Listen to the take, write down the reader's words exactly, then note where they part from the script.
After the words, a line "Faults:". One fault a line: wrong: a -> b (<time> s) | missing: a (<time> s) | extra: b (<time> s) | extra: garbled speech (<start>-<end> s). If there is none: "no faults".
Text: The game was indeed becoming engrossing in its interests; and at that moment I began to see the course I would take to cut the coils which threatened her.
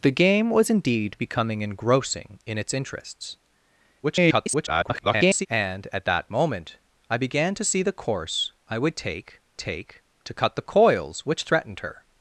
The game was indeed becoming engrossing in its interests; [garbled] and at that moment I began to see the course I would take take to cut the coils which threatened her.
Faults:
extra: garbled speech (4.0-5.5 s)
extra: take (9.6 s)